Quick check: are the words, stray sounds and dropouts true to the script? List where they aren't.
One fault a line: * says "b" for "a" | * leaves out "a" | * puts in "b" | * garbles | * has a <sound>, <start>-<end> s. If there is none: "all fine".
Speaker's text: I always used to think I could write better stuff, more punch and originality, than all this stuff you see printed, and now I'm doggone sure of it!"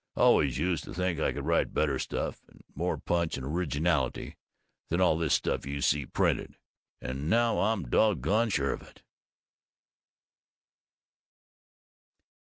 * puts in "and"